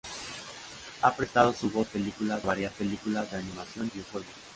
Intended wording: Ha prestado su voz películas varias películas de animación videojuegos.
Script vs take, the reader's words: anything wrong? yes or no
no